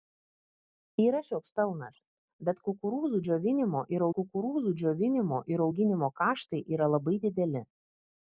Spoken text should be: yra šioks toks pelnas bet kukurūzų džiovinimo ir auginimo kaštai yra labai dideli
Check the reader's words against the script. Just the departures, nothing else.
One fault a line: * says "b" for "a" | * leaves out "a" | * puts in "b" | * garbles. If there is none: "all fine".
* leaves out "toks"
* puts in "kukurūzų džiovinimo ir"